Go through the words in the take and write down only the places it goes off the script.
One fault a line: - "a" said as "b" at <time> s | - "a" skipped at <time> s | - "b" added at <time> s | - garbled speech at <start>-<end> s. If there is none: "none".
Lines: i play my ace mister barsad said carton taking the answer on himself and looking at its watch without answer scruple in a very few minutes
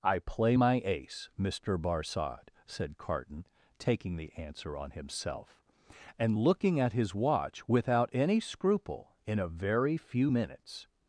- "its" said as "his" at 6.9 s
- "answer" said as "any" at 8.1 s